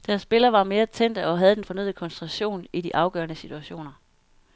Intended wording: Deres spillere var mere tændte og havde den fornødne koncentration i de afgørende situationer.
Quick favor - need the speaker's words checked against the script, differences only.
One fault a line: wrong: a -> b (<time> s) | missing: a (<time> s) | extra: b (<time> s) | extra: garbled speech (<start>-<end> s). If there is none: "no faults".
no faults